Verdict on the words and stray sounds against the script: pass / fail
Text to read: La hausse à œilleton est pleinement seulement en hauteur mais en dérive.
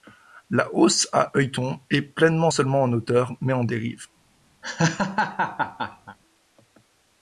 fail